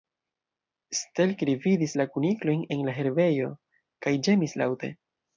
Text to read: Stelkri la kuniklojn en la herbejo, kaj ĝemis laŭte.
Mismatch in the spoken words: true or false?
true